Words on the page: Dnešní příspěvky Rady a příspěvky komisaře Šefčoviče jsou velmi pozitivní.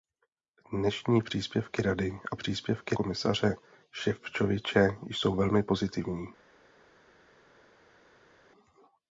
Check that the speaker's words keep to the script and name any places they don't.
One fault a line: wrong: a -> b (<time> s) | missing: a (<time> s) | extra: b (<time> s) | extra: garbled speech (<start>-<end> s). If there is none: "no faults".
no faults